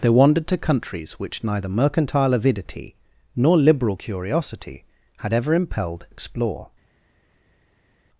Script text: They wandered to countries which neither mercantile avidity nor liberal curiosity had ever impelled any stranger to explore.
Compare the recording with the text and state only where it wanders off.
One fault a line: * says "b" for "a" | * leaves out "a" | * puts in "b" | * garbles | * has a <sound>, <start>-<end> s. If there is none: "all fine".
* leaves out "any stranger to"